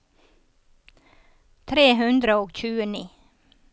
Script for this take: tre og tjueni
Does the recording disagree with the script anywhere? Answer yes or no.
yes